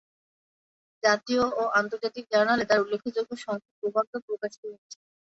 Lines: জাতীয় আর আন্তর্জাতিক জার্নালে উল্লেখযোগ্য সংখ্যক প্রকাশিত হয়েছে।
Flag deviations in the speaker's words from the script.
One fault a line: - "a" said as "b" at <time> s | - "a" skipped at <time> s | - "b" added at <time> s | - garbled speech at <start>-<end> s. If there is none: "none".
- "আর" said as "ও" at 1.5 s
- "তার" added at 2.7 s
- "প্রবন্ধ" added at 3.8 s